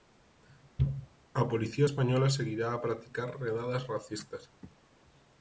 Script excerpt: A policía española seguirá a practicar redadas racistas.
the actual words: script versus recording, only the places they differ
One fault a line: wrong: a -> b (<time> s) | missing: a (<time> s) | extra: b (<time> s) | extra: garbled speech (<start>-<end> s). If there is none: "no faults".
no faults